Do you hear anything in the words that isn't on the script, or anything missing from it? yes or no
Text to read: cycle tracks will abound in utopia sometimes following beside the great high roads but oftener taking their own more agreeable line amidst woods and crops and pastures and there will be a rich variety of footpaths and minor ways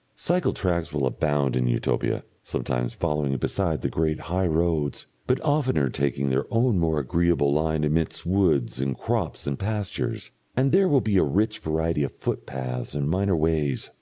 no